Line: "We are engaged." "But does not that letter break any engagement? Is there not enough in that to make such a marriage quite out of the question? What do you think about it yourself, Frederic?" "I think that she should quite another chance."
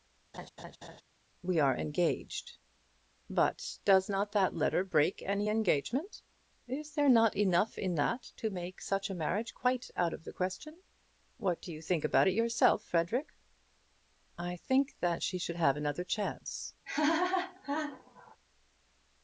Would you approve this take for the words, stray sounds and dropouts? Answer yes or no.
no